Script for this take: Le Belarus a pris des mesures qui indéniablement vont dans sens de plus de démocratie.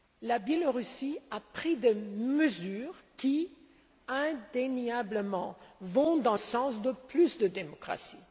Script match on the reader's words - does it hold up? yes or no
yes